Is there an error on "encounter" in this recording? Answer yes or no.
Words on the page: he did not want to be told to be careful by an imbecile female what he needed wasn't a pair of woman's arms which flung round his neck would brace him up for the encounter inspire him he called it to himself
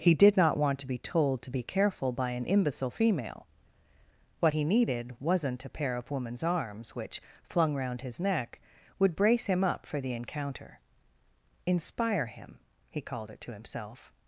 no